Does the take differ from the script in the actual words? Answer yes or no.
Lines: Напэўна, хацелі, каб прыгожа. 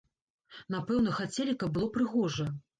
yes